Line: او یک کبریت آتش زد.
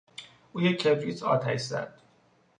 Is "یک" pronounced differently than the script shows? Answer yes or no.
no